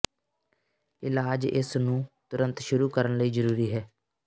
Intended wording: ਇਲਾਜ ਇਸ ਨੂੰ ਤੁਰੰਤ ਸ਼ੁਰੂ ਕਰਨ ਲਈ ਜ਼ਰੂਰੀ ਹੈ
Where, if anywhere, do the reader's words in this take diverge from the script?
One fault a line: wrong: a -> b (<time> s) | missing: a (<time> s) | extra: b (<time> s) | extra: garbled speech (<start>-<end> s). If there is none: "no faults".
no faults